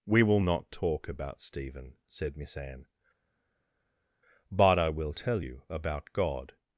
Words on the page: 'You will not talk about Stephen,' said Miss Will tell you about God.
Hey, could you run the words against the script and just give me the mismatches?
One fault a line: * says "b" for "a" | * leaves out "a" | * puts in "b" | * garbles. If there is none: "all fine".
* says "We" for "You"
* puts in "Anne but I"